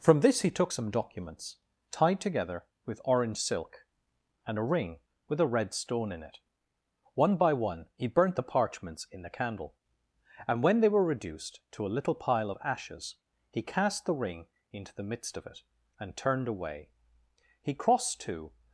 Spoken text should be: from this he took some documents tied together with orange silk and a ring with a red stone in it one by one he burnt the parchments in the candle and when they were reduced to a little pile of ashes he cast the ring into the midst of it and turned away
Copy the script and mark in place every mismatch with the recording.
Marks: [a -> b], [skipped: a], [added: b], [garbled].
from this he took some documents tied together with orange silk and a ring with a red stone in it one by one he burnt the parchments in the candle and when they were reduced to a little pile of ashes he cast the ring into the midst of it and turned away [added: he crossed to]